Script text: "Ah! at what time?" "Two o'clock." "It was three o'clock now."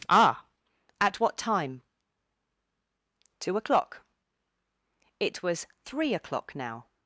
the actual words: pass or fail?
pass